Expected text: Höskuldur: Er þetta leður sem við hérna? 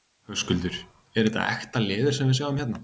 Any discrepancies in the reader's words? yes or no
yes